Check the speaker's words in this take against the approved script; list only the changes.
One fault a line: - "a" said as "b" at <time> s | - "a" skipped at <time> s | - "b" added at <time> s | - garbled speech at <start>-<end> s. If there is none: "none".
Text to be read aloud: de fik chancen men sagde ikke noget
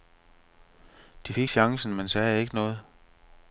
none